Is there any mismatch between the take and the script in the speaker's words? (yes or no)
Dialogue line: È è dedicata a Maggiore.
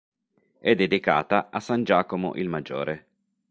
yes